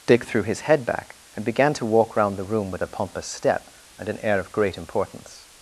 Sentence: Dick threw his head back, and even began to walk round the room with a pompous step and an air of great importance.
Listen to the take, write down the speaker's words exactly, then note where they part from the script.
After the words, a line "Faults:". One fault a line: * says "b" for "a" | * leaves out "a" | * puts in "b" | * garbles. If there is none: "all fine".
Dick threw his head back, and began to walk round the room with a pompous step and an air of great importance.
Faults:
* leaves out "even"